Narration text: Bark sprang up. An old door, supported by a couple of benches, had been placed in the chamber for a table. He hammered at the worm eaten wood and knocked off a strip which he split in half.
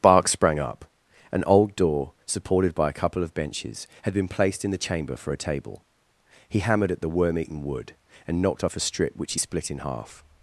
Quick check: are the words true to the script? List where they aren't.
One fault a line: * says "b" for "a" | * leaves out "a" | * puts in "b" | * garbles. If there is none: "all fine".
all fine